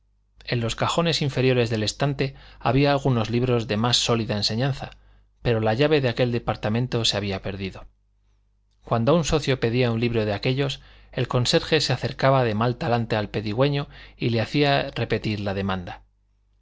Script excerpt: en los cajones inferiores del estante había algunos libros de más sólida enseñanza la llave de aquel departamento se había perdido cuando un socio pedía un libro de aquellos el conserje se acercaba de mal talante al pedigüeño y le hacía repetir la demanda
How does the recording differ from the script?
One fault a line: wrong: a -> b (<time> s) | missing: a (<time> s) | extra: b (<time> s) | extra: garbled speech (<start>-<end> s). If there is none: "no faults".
extra: pero (5.4 s)